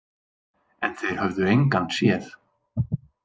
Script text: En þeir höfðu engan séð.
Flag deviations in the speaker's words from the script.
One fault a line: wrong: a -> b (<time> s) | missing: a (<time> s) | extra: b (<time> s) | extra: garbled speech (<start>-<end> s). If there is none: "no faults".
no faults